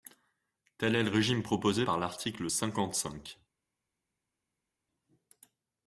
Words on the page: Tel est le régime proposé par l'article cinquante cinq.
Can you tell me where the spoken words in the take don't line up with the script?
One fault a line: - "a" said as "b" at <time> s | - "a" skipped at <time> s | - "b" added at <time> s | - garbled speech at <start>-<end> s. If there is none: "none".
none